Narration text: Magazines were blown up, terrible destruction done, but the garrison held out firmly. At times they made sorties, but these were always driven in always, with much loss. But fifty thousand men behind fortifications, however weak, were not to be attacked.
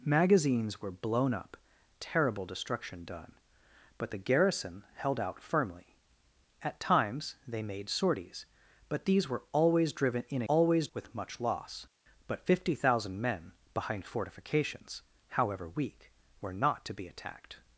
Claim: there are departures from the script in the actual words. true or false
false